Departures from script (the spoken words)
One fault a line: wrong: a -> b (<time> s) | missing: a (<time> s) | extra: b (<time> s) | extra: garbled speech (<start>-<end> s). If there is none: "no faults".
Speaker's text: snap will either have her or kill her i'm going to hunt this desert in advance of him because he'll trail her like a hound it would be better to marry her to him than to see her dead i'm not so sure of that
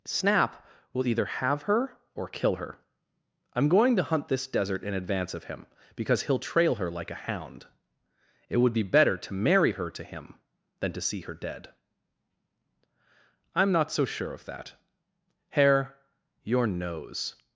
extra: hare your nose (15.5 s)